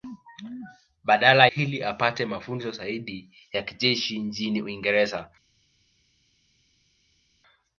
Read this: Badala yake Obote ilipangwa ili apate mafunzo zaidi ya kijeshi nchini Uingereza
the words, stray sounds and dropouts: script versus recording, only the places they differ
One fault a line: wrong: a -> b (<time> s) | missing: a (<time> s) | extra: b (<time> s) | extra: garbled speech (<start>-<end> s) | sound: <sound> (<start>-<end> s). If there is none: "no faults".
missing: yake Obote ilipangwa (1.5 s)